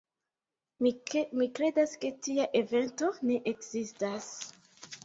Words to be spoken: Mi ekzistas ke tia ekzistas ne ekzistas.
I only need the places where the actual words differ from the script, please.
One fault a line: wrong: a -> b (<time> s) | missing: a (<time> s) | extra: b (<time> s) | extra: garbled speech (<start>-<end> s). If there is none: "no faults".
wrong: ekzistas -> kredas (1.6 s)
wrong: ekzistas -> evento (2.6 s)